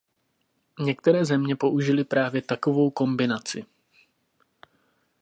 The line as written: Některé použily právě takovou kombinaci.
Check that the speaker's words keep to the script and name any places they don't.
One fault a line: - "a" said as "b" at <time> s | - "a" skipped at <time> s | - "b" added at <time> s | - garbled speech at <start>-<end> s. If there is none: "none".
- "země" added at 1.2 s